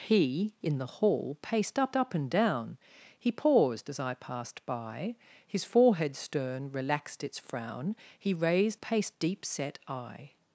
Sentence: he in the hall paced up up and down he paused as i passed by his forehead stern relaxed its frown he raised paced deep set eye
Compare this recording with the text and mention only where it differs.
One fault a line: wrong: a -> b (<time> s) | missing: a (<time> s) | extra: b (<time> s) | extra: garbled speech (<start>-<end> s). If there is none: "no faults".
no faults